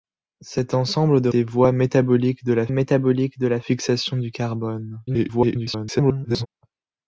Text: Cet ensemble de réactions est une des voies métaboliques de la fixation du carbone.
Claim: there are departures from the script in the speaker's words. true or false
true